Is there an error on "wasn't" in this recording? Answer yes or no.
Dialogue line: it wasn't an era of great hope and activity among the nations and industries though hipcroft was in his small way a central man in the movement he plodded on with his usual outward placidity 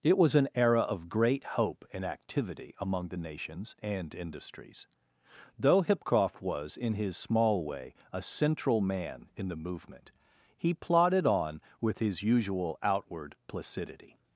yes